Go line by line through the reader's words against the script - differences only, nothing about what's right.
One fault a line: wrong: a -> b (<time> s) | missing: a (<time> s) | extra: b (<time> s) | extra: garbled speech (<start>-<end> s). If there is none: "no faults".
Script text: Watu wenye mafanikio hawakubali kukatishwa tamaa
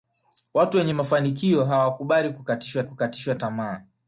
extra: kukatishwa (2.8 s)